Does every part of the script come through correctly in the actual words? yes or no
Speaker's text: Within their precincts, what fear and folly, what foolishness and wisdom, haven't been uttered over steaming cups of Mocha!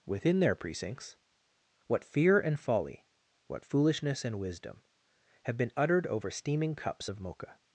no